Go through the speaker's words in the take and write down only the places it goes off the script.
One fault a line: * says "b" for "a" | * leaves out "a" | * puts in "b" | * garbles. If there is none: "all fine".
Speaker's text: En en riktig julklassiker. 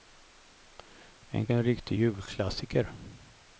all fine